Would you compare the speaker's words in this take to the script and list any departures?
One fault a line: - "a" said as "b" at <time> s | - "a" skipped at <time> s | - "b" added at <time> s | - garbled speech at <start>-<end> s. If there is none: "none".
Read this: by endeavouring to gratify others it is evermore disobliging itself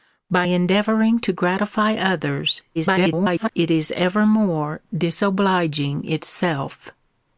- garbled speech at 2.7-3.5 s